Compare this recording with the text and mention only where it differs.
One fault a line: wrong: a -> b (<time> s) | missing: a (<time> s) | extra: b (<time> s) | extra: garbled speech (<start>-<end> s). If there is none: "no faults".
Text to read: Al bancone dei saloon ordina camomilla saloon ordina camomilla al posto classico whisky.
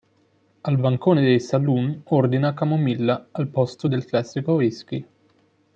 missing: saloon ordina camomilla (3.3 s)
extra: del (3.9 s)